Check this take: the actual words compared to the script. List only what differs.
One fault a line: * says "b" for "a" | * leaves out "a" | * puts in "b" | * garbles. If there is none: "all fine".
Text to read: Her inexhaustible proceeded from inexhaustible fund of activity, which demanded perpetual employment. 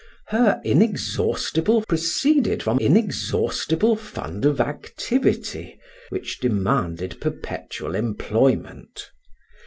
all fine